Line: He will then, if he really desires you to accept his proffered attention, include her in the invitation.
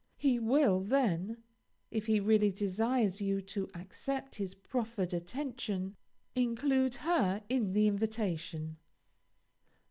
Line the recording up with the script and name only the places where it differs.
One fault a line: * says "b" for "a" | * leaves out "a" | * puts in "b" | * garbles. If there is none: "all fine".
all fine